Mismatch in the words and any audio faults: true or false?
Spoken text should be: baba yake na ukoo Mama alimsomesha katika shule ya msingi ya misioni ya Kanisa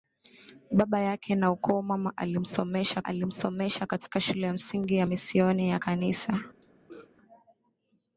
true